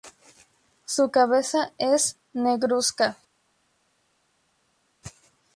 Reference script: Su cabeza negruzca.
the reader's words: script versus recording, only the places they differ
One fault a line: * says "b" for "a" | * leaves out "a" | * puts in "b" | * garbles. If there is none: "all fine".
* puts in "es"